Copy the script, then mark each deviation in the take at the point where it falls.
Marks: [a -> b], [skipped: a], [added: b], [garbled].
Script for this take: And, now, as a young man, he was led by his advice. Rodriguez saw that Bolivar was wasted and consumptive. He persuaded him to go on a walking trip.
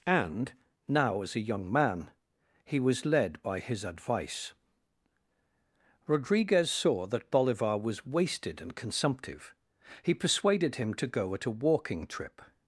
And, now, as a young man, he was led by his advice. Rodriguez saw that Bolivar was wasted and consumptive. He persuaded him to go [on -> at] a walking trip.